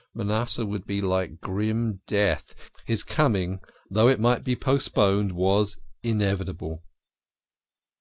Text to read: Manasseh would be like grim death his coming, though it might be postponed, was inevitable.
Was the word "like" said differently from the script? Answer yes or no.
no